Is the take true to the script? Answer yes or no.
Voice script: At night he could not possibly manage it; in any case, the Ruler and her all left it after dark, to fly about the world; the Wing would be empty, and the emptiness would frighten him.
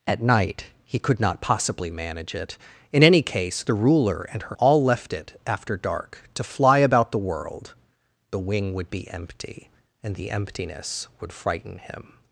yes